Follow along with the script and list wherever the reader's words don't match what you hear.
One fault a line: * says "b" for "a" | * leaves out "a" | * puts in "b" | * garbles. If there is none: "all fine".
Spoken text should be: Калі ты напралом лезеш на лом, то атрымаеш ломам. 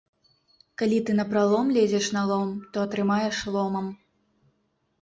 all fine